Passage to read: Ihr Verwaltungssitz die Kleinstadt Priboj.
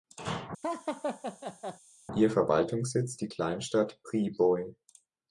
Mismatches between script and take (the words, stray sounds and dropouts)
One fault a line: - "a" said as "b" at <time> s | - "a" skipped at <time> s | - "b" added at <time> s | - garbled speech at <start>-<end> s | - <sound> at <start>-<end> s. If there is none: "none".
- laugh at 0.6-1.8 s